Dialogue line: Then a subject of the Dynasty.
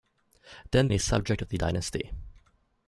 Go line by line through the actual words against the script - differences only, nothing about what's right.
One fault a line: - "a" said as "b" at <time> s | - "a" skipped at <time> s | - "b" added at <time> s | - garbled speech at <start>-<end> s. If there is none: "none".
none